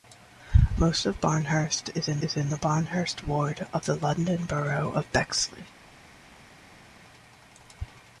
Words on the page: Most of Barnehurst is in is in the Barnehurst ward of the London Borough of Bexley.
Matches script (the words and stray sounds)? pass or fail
pass